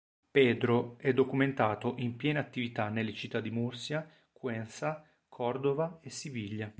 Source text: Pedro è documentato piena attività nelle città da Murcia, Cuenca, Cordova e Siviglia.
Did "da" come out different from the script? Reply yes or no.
yes